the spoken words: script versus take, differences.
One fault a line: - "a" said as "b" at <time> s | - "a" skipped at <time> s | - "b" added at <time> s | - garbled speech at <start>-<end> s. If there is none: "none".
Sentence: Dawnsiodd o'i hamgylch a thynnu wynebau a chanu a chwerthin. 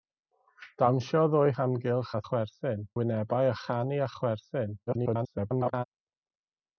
- "thynnu" said as "chwerthin" at 2.3 s
- garbled speech at 4.9-5.8 s